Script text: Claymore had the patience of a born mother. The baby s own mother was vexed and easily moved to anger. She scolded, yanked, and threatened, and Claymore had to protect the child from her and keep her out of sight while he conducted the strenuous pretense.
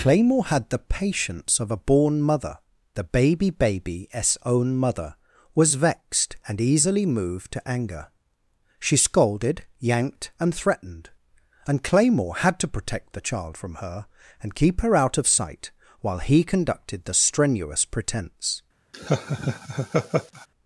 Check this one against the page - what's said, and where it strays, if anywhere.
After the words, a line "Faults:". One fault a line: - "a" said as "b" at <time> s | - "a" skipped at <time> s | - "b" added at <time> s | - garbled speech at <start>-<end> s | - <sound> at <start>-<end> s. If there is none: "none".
Claymore had the patience of a born mother. The baby baby s own mother was vexed and easily moved to anger. She scolded, yanked, and threatened, and Claymore had to protect the child from her and keep her out of sight while he conducted the strenuous pretense.
Faults:
- "baby" added at 3.5 s
- laugh at 18.9-20.5 s